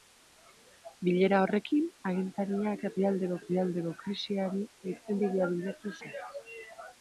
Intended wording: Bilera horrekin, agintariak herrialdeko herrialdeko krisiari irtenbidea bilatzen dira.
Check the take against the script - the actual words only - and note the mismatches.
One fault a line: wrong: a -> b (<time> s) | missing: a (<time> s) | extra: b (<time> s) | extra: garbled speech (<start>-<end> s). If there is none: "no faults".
no faults